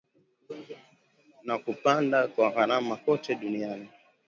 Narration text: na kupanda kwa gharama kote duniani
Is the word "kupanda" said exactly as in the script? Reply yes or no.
yes